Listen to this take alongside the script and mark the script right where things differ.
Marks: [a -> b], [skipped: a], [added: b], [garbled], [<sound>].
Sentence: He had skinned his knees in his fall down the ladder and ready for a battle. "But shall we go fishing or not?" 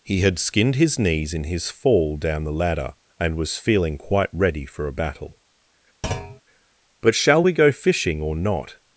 He had skinned his knees in his fall down the ladder and [added: was feeling quite] ready for a battle. [thud] "But shall we go fishing or not?"